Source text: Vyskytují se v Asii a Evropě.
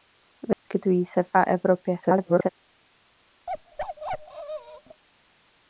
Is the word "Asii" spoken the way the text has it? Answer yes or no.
no